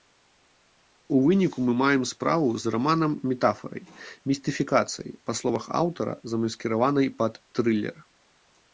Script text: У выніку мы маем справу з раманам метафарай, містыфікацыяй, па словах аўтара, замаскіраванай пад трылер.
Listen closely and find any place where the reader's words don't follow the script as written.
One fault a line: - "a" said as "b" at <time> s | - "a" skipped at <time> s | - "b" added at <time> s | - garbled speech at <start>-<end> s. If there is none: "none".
none